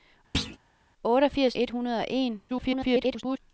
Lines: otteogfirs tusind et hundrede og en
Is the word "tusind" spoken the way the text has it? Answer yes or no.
no